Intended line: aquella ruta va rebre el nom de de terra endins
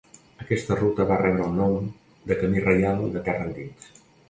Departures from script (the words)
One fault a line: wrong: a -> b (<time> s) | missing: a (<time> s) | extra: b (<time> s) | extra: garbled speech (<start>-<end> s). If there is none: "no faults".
wrong: aquella -> aquesta (0.5 s)
extra: camí reial (2.4 s)